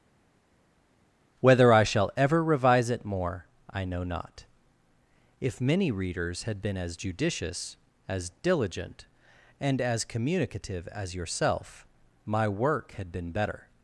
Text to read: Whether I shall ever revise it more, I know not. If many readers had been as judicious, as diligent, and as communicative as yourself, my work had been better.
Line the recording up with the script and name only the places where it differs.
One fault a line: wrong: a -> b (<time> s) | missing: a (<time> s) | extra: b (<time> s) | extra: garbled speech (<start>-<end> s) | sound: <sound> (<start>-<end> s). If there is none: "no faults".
no faults